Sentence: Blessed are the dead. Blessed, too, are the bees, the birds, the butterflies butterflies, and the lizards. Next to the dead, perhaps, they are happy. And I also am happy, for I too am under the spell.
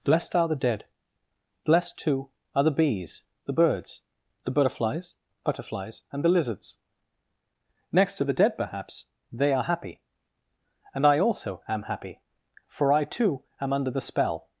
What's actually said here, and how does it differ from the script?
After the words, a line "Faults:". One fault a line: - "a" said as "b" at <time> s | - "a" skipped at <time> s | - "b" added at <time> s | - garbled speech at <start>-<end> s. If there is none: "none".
Blessed are the dead. Blessed, too, are the bees, the birds, the butterflies butterflies, and the lizards. Next to the dead, perhaps, they are happy. And I also am happy, for I too am under the spell.
Faults:
none